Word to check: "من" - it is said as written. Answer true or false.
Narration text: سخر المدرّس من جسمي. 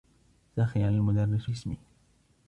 false